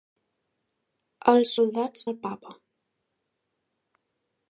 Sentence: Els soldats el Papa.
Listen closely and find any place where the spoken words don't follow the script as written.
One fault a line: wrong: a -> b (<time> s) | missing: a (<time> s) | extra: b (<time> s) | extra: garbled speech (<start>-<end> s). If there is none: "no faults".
no faults